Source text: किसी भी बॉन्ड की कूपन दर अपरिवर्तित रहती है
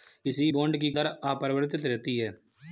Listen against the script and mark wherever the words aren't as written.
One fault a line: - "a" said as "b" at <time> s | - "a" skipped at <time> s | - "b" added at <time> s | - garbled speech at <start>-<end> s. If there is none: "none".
- "भी" skipped at 0.5 s
- "कूपन" skipped at 0.9 s